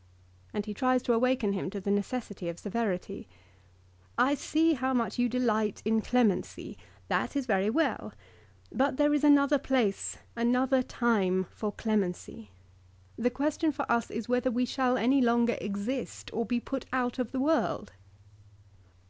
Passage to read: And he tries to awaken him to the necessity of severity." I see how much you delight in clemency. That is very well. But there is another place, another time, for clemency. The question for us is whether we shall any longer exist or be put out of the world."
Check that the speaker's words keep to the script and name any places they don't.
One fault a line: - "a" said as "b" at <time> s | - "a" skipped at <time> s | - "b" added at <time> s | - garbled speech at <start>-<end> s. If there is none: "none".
none